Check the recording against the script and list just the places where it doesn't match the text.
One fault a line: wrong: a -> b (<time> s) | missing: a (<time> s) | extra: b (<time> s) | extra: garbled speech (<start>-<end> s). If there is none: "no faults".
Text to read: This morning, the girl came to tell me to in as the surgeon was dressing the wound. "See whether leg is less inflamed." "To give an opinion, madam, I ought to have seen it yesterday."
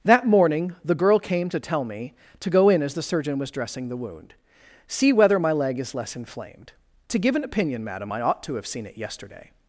wrong: This -> That (0.0 s)
extra: go (2.5 s)
extra: my (5.4 s)